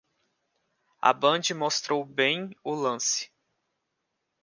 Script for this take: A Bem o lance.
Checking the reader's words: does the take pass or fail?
fail